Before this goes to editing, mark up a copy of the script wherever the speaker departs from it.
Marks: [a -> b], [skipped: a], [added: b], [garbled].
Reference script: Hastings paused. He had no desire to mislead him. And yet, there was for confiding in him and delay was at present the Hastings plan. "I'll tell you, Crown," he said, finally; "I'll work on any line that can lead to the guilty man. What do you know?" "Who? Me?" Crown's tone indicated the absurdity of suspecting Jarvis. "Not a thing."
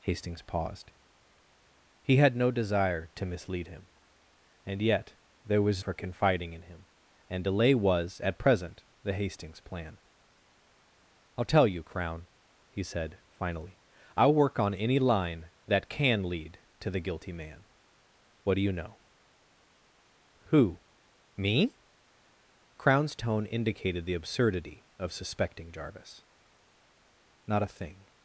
Hastings paused. He had no desire to mislead him. And yet, there was for confiding in him and delay was at present the Hastings plan. "I'll tell you, Crown," he said, finally; "I'll work on any line that can lead to the guilty man. What do you know?" "Who? Me?" Crown's tone indicated the absurdity of suspecting Jarvis. "Not a thing."